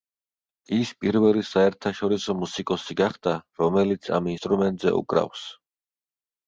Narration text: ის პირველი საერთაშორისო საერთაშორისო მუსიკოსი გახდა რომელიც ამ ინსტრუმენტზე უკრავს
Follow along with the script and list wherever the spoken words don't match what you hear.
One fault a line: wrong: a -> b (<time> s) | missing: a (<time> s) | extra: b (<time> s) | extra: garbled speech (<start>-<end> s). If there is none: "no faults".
missing: საერთაშორისო (2.4 s)